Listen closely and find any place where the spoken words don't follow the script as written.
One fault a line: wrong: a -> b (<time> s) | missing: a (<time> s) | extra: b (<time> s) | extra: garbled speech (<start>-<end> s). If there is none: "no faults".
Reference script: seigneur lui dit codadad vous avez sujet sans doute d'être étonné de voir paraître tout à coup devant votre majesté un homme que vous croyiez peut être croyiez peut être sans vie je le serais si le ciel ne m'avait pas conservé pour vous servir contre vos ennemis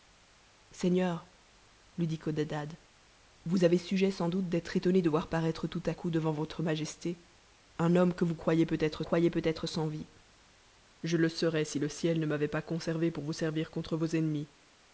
no faults